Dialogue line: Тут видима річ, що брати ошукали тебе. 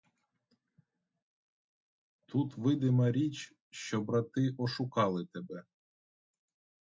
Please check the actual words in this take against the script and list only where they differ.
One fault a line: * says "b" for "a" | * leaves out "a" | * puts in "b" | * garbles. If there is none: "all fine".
all fine